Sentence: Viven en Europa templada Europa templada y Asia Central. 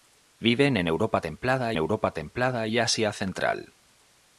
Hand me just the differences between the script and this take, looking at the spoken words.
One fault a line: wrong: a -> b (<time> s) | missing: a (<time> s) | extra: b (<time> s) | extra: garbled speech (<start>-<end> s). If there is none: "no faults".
no faults